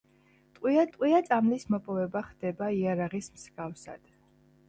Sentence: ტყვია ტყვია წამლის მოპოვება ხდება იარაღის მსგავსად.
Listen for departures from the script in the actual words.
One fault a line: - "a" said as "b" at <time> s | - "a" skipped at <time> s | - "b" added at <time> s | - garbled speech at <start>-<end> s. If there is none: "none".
none